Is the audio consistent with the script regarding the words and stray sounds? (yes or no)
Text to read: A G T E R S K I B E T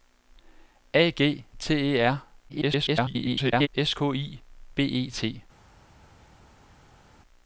no